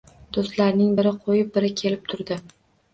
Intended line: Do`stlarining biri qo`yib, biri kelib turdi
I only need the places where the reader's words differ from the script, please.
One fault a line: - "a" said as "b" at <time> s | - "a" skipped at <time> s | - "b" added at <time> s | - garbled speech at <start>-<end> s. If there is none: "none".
none